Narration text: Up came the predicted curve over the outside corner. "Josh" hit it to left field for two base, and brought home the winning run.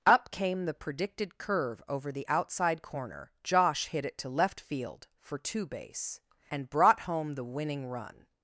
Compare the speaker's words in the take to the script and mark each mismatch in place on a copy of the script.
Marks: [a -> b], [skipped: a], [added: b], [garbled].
Up came the predicted curve over the outside corner. "Josh" hit it to left field for two base, and brought home the winning run.